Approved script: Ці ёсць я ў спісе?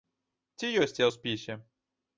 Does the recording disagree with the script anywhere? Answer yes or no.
no